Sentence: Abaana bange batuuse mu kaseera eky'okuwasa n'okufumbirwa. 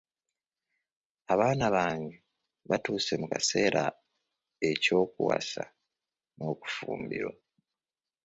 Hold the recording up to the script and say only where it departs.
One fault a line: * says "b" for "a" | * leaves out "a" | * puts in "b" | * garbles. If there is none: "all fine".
all fine